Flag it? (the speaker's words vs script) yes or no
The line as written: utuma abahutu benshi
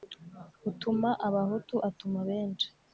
yes